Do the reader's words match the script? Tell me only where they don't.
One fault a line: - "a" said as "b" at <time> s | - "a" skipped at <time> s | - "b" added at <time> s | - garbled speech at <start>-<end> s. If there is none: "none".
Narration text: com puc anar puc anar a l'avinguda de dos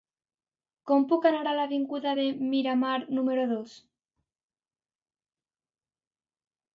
- "puc anar" skipped at 1.4 s
- "miramar número" added at 2.5 s